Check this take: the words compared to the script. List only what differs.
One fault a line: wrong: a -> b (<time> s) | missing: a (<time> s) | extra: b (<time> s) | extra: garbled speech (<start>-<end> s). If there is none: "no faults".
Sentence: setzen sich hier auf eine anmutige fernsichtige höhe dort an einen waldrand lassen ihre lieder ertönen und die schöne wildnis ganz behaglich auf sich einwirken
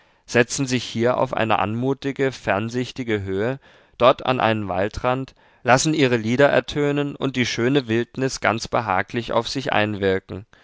no faults